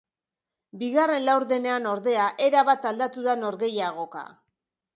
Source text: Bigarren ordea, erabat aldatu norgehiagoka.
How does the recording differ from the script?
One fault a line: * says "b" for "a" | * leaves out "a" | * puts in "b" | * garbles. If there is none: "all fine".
* puts in "laurdenean"
* puts in "da"